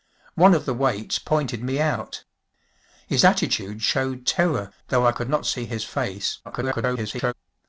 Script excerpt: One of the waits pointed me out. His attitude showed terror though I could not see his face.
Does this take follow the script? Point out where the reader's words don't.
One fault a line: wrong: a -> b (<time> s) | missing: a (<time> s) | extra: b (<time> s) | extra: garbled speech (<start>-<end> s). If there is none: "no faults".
extra: garbled speech (6.4-7.3 s)